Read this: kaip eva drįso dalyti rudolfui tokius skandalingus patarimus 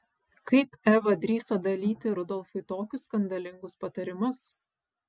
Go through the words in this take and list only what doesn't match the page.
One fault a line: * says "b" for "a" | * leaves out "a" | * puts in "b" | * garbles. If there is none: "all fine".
all fine